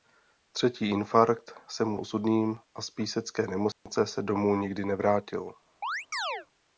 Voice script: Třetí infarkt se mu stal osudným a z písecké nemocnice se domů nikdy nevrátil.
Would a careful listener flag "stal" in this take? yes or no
yes